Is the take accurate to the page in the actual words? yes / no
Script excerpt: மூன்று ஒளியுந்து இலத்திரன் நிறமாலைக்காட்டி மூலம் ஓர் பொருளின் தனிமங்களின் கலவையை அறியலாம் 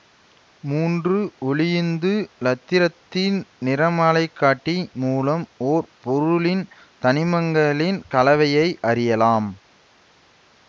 yes